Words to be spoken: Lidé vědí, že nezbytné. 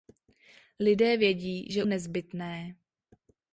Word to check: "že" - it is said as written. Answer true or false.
true